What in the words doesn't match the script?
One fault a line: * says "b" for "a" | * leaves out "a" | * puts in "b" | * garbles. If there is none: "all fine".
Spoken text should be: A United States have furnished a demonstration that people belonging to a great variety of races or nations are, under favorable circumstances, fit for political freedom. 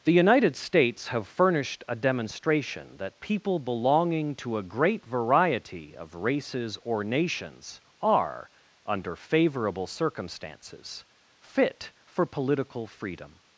* says "The" for "A"